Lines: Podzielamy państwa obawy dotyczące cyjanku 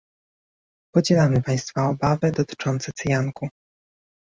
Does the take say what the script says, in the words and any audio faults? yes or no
yes